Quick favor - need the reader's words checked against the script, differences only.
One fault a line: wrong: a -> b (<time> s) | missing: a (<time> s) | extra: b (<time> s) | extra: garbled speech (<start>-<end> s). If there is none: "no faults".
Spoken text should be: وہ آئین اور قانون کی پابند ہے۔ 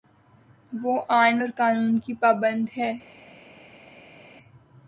no faults